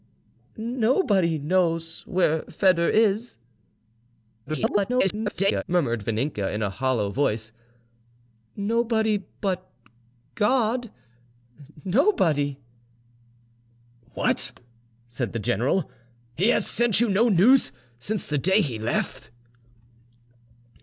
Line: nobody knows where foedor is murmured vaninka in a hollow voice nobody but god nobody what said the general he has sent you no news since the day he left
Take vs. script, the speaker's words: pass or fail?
fail